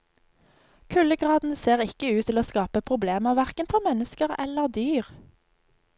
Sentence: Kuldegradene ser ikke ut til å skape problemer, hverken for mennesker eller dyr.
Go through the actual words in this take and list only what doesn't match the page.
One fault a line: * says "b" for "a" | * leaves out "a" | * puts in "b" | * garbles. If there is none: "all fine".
all fine